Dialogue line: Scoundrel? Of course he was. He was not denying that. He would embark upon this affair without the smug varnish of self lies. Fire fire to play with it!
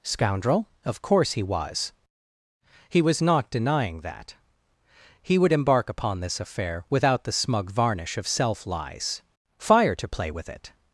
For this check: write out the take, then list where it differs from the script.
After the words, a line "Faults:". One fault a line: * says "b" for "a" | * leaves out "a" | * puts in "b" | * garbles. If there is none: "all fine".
Scoundrel? Of course he was. He was not denying that. He would embark upon this affair without the smug varnish of self lies. Fire to play with it!
Faults:
* leaves out "fire"